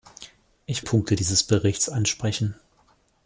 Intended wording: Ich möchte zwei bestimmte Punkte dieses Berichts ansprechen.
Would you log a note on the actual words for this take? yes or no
yes